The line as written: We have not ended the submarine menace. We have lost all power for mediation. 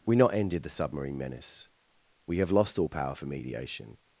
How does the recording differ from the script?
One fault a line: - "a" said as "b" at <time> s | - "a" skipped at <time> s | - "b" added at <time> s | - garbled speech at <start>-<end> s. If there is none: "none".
- "have" skipped at 0.1 s